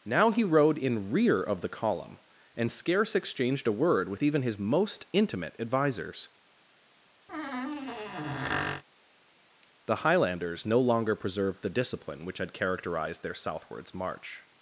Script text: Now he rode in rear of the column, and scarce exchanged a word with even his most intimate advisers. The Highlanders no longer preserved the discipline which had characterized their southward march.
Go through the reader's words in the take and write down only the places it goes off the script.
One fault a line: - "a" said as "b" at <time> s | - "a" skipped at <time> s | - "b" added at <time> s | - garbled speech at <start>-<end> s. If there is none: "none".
- "southward" said as "southwards" at 13.3 s